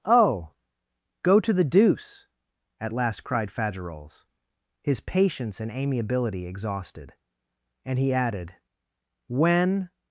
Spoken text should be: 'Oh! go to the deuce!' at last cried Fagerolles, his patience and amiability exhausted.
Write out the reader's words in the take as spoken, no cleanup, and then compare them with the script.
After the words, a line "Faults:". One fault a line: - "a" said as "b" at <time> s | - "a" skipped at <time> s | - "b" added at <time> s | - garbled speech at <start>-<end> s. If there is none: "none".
'Oh! go to the deuce!' at last cried Fagerolles, his patience and amiability exhausted. And he added, when
Faults:
- "And he added when" added at 7.8 s